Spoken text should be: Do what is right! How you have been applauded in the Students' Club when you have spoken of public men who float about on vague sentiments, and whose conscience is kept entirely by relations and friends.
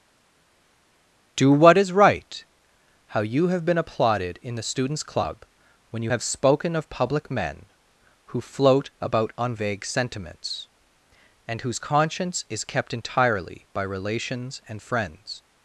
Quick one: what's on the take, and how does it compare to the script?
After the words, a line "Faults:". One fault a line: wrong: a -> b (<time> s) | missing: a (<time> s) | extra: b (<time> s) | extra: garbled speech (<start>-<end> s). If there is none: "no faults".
Do what is right! How you have been applauded in the Students' Club when you have spoken of public men who float about on vague sentiments, and whose conscience is kept entirely by relations and friends.
Faults:
no faults